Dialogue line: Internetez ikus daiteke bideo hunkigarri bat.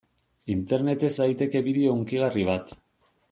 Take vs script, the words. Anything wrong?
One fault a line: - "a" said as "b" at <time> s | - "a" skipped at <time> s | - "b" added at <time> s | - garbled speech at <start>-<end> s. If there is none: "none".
- "ikus" skipped at 1.1 s